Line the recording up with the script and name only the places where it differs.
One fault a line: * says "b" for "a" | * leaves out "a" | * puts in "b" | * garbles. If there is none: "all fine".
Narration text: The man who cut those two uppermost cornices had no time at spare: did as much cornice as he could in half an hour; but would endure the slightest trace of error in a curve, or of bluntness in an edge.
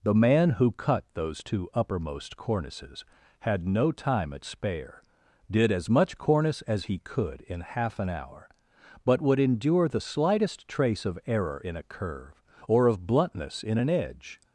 all fine